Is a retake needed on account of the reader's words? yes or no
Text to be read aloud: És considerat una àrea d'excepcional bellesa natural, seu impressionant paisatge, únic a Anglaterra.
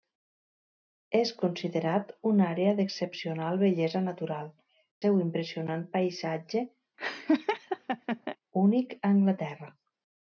no